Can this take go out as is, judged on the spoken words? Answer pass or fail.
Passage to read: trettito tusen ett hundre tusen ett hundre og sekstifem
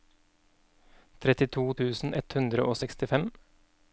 fail